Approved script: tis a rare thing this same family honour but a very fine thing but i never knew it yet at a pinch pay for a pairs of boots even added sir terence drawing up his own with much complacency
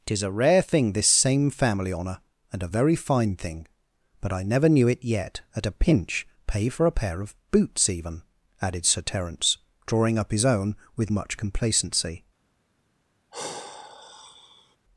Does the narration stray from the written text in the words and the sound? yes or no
yes